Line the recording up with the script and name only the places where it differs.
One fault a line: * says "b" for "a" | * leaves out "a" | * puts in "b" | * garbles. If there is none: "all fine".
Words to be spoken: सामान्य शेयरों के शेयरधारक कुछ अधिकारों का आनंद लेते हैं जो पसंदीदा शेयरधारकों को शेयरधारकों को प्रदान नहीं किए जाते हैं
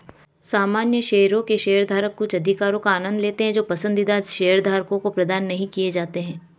* leaves out "शेयरधारकों को"